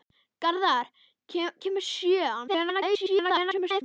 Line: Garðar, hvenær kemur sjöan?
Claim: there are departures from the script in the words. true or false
true